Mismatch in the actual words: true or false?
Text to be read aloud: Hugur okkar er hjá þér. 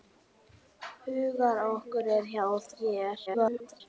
true